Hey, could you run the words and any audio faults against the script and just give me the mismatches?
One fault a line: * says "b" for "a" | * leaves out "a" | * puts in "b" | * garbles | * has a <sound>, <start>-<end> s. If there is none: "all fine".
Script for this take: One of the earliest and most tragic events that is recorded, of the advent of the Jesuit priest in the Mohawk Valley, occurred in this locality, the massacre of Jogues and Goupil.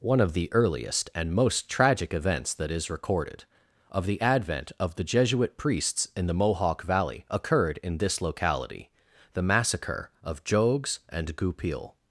* says "priests" for "priest"